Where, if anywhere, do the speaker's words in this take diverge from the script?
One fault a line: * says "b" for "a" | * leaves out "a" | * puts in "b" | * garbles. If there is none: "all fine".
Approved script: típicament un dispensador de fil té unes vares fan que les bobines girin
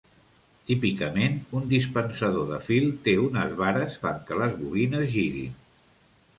all fine